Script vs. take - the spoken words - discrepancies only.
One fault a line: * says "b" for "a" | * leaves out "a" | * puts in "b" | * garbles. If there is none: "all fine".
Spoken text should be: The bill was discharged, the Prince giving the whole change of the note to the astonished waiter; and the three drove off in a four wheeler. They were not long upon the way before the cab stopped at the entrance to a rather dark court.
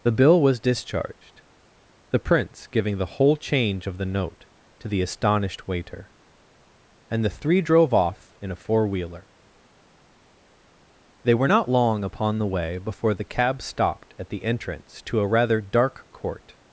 all fine